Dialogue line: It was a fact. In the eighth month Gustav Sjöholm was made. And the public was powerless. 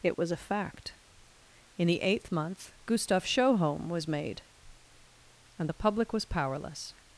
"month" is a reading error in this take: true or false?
false